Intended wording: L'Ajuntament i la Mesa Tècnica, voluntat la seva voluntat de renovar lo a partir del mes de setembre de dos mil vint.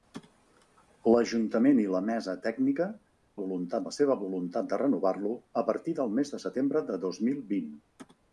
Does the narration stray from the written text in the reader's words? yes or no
no